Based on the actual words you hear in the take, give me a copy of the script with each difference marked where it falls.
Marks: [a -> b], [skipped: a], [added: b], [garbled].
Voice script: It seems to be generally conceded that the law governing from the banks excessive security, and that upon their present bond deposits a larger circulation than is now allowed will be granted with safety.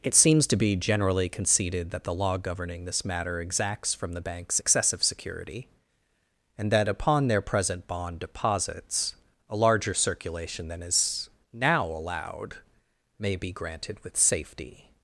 It seems to be generally conceded that the law governing [added: this matter exacts] from the banks excessive security, and that upon their present bond deposits a larger circulation than is now allowed [will -> may] be granted with safety.